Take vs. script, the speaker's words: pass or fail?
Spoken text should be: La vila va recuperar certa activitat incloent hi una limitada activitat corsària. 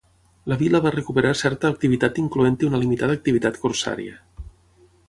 pass